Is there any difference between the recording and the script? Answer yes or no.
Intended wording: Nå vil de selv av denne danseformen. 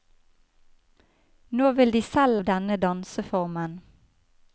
no